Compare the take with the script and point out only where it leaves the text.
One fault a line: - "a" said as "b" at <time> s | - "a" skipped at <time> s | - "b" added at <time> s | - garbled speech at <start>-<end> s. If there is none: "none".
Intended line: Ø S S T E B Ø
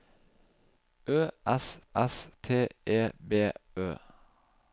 none